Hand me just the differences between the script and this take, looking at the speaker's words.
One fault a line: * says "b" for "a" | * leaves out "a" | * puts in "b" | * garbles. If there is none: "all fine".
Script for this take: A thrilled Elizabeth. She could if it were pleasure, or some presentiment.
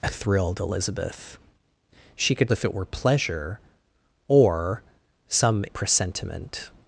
all fine